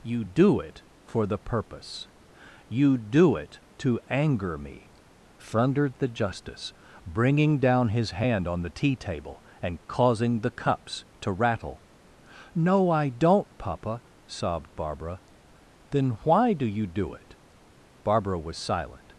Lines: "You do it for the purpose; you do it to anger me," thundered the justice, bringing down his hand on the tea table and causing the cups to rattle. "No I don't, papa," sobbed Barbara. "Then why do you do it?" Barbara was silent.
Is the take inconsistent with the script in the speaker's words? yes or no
no